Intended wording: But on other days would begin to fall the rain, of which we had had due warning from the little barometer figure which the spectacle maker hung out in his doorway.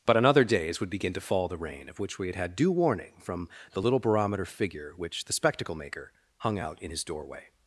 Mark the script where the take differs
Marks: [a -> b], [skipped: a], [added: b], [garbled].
But on other days would begin to fall the rain, of which we had had due warning from the little barometer figure which the spectacle maker hung out in his doorway.